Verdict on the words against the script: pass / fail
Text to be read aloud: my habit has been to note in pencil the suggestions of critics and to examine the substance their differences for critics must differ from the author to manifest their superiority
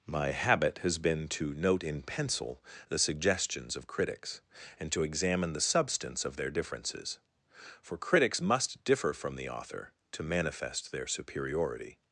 fail